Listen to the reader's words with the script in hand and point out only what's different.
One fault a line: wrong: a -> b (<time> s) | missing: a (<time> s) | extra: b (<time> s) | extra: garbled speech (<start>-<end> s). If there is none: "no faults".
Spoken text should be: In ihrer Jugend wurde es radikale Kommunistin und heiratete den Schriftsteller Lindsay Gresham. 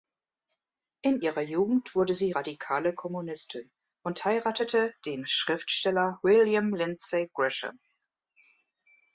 wrong: es -> sie (2.1 s)
extra: William (6.2 s)